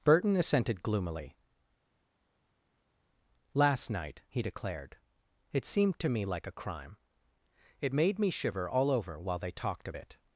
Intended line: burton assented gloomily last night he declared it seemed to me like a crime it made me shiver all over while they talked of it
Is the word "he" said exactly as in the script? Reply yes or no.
yes